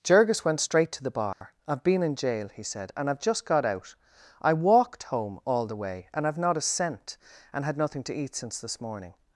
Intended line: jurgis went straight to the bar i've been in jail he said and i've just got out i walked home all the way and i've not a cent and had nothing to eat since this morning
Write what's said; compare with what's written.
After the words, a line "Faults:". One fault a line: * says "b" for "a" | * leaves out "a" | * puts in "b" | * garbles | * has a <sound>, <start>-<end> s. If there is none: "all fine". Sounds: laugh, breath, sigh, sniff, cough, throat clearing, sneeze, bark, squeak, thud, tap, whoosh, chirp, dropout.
jurgis went straight to the bar i've been in jail he said and i've just got out i walked home all the way and i've not a cent and had nothing to eat since this morning
Faults:
* has a dropout, 1.3-1.4 s